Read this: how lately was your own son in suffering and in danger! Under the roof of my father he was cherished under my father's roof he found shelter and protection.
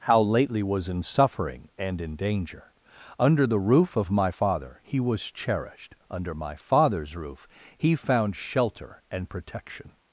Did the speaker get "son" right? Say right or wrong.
wrong